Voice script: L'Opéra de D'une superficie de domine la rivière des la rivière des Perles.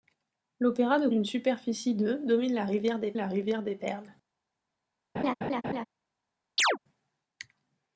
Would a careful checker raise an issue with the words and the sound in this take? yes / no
yes